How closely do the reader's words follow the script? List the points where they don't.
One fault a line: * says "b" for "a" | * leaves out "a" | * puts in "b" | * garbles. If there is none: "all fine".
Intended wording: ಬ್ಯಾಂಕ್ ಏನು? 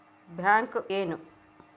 all fine